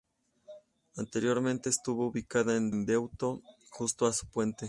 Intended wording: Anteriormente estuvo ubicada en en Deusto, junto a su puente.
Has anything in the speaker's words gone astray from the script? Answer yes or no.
no